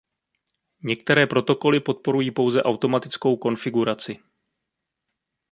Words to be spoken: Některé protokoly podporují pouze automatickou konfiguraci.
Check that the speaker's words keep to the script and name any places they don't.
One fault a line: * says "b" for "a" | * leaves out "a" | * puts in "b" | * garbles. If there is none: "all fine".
all fine